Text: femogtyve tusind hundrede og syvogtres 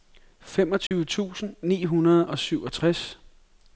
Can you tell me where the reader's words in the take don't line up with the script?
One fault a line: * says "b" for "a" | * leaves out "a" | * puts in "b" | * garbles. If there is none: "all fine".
* puts in "ni"